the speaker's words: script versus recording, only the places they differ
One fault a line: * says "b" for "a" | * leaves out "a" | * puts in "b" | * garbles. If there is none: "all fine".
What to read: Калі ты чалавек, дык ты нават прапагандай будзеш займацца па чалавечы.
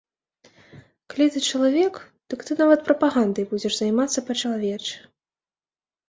all fine